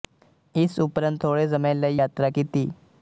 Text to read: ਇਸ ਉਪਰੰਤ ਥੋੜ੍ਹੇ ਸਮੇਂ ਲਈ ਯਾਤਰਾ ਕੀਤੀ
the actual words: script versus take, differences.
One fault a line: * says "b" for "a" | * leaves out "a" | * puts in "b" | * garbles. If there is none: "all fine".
all fine